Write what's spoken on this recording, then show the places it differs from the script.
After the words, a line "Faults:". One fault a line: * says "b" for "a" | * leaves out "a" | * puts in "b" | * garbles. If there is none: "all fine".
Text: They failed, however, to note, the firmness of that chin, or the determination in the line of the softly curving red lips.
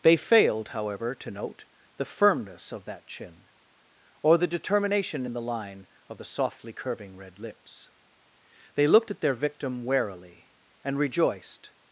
They failed, however, to note, the firmness of that chin, or the determination in the line of the softly curving red lips. They looked at their victim warily, and rejoiced
Faults:
* puts in "They looked at their victim warily and rejoiced"